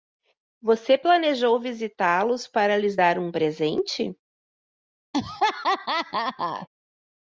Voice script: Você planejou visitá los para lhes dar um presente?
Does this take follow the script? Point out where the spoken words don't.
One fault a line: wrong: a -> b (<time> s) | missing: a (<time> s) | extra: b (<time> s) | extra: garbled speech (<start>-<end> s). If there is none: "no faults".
no faults